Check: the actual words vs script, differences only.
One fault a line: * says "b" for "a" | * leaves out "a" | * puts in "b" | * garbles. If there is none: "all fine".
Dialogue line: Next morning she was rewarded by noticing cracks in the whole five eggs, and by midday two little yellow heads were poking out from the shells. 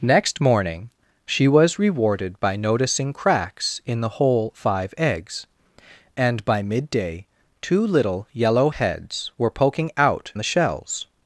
* leaves out "from"